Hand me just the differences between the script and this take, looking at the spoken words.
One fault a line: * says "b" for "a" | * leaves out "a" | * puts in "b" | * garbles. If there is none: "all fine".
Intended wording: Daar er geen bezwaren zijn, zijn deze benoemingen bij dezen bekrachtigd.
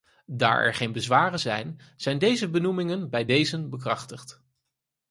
all fine